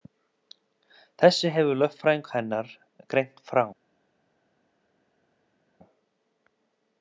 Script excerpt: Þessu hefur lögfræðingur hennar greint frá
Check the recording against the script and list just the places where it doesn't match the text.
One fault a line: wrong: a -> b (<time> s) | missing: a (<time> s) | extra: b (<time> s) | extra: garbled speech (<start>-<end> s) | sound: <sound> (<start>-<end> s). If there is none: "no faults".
no faults